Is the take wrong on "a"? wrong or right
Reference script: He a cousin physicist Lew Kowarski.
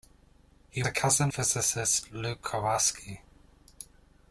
right